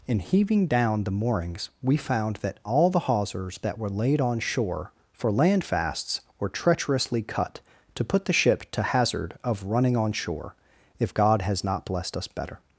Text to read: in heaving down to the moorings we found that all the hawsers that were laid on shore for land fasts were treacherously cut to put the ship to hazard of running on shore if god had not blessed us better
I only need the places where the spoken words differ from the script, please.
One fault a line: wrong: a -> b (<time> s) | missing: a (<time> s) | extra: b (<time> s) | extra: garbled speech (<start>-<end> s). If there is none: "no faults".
missing: to (1.0 s)
wrong: had -> has (11.4 s)